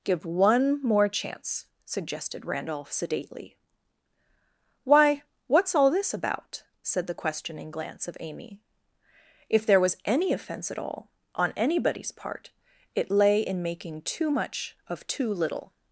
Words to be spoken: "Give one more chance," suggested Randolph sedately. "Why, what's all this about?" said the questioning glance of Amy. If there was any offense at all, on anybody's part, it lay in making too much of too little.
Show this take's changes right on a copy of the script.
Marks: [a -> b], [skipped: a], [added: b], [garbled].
"Give one more chance," suggested Randolph sedately. "Why, what's all this about?" said the questioning glance of Amy. If there was any offense at all, on anybody's part, it lay in making too much of too little.